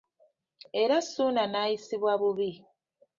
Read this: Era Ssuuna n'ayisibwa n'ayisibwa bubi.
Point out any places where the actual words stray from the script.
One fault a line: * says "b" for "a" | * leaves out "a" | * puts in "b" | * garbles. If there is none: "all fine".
* leaves out "n'ayisibwa"